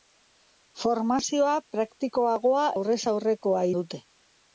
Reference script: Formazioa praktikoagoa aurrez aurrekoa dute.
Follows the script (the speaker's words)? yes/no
yes